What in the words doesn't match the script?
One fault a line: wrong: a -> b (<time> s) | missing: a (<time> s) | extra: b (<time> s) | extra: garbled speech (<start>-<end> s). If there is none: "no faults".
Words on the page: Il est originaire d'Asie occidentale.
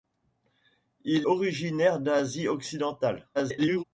missing: est (1.3 s)
extra: garbled speech (3.3-3.8 s)